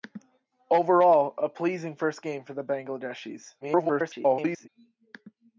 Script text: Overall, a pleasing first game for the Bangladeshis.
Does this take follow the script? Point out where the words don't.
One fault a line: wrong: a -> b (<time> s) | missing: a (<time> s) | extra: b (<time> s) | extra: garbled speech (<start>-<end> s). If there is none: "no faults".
extra: garbled speech (3.6-4.7 s)